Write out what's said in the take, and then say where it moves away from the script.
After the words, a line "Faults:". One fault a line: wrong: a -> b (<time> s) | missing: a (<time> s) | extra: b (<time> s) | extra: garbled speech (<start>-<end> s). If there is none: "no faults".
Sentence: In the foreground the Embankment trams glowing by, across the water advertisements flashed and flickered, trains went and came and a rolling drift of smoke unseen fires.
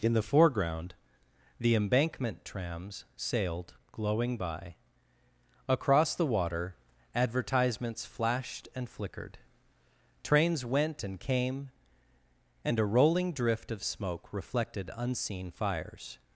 In the foreground the Embankment trams sailed glowing by, across the water advertisements flashed and flickered, trains went and came and a rolling drift of smoke reflected unseen fires.
Faults:
extra: sailed (3.1 s)
extra: reflected (14.3 s)